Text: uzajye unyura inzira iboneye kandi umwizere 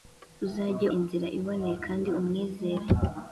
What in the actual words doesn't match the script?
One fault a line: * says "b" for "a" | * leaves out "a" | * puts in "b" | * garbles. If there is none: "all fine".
* leaves out "unyura"